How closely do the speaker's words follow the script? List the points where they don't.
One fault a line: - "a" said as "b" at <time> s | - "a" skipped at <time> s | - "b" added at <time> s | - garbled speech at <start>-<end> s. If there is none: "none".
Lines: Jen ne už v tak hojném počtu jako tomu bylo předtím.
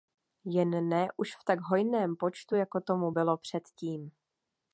none